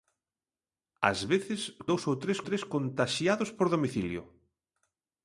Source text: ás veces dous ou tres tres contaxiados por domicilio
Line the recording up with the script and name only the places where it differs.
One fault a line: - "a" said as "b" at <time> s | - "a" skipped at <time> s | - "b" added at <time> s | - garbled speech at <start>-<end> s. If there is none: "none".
none